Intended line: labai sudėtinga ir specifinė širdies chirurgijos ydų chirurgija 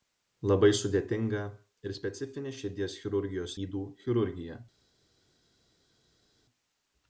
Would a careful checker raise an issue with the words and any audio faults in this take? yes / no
no